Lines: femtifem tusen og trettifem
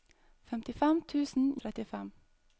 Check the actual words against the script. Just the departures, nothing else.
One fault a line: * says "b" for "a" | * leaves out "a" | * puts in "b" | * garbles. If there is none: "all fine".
all fine